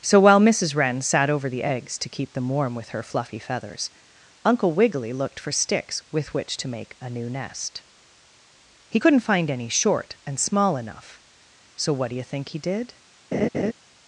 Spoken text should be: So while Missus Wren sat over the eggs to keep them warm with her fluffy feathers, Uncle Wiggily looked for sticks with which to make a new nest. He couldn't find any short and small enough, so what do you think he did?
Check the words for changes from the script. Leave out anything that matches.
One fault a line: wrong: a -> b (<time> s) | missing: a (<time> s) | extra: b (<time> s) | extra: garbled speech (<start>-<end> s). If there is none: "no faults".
no faults